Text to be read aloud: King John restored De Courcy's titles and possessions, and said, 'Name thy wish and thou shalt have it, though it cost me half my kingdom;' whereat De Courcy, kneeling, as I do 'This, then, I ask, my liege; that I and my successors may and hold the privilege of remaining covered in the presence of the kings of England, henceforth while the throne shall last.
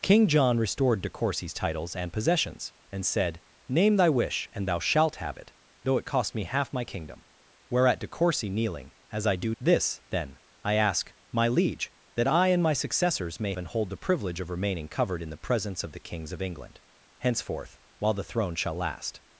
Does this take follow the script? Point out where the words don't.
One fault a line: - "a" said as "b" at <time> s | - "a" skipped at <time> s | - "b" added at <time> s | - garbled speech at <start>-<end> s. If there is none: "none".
none